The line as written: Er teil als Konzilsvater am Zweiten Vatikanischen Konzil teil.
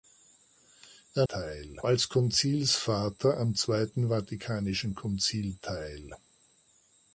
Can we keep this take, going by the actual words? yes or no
yes